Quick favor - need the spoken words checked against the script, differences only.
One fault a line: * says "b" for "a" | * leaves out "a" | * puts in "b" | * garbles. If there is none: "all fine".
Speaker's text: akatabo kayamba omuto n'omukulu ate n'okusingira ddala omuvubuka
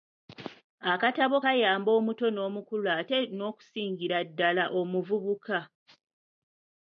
all fine